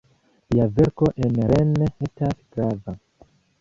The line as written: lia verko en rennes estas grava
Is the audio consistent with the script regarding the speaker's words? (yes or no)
yes